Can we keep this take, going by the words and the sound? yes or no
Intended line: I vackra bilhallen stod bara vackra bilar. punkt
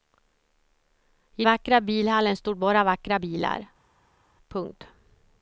yes